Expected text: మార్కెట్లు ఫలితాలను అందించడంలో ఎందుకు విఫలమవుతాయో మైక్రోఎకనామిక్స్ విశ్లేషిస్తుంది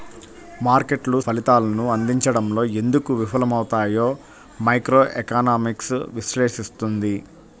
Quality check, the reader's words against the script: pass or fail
pass